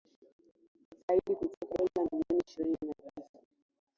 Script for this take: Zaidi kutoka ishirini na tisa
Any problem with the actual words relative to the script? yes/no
yes